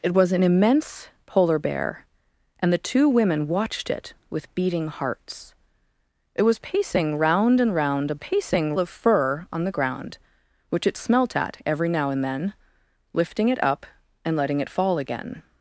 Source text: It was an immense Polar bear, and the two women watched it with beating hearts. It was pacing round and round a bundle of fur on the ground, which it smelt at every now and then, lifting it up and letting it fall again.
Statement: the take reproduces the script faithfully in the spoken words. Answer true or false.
false